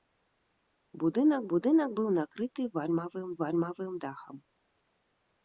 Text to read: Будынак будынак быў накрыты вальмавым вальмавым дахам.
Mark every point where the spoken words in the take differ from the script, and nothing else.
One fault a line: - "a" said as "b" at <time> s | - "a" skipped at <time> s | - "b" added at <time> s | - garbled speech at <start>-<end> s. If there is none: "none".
none